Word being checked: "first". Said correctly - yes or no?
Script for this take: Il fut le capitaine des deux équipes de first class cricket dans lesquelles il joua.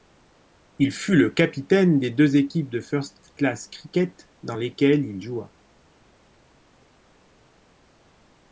yes